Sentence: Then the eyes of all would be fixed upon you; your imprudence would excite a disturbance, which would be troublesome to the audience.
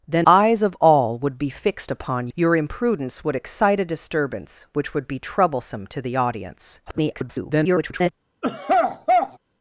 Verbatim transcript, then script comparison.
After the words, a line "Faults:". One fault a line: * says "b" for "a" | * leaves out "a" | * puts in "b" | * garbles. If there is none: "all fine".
Then eyes of all would be fixed upon; your imprudence would excite a disturbance, which would be troublesome to the audience. [garbled]
Faults:
* leaves out "the"
* leaves out "you"
* garbles